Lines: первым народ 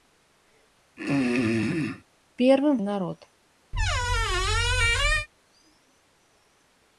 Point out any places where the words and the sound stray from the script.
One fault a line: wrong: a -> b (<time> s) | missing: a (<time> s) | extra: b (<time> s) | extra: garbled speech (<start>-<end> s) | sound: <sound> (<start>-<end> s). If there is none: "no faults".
sound: throat clearing (1.0-2.0 s)
sound: squeak (3.7-5.3 s)